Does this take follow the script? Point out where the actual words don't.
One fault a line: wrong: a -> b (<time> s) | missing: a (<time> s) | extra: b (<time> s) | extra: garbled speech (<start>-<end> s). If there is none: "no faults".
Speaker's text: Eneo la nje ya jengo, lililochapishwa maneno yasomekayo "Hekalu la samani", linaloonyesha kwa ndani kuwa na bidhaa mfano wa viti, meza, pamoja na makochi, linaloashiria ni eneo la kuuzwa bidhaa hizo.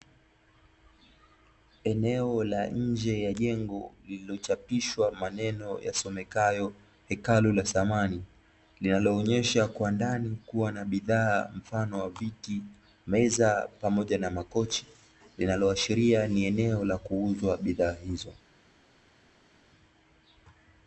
no faults